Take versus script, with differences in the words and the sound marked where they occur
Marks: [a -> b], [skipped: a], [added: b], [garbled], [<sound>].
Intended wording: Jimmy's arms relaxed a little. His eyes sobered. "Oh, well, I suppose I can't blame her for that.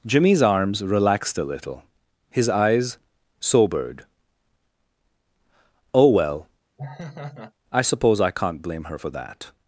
Jimmy's arms relaxed a little. His eyes sobered. "Oh, well, [laugh] I suppose I can't blame her for that.